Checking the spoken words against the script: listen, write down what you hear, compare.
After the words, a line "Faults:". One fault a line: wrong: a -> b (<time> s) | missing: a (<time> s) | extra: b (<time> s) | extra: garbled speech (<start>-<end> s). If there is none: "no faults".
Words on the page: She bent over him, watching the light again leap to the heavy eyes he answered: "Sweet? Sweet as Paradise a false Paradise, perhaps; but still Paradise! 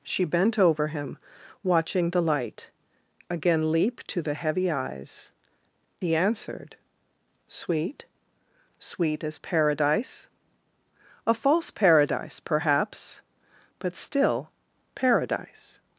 She bent over him, watching the light again leap to the heavy eyes he answered: "Sweet? Sweet as Paradise a false Paradise, perhaps; but still Paradise!
Faults:
no faults